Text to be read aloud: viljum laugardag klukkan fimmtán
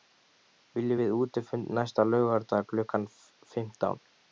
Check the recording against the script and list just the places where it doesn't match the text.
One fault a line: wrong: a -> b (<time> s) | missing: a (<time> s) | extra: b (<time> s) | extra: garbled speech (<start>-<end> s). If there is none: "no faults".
extra: við útifund næsta (1.0 s)